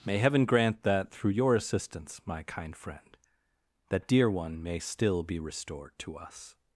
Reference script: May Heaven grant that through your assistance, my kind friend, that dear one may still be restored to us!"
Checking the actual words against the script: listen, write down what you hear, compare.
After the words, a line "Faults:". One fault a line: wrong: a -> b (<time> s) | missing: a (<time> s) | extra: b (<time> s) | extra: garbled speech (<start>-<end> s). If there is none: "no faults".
May Heaven grant that through your assistance, my kind friend, that dear one may still be restored to us!"
Faults:
no faults